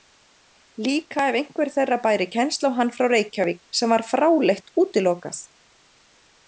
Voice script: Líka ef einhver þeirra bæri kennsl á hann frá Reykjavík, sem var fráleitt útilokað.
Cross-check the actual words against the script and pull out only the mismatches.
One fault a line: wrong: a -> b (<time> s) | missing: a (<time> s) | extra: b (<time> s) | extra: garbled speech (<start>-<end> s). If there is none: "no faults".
no faults